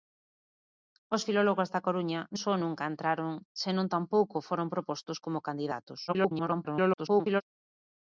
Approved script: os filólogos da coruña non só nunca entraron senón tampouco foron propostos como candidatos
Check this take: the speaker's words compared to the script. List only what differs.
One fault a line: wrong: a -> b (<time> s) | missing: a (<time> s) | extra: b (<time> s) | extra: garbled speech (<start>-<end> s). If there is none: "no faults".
missing: non (2.2 s)
extra: garbled speech (6.1-7.4 s)